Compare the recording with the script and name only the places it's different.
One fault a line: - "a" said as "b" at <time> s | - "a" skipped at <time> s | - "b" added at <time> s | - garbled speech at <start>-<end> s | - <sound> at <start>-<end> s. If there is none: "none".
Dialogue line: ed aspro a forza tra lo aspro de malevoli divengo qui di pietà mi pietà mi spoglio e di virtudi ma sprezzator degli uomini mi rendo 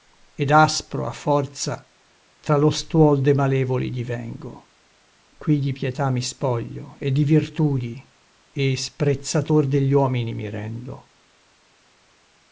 - "aspro" said as "stuol" at 2.7 s
- "pietà mi" skipped at 6.2 s
- "ma" said as "e" at 8.5 s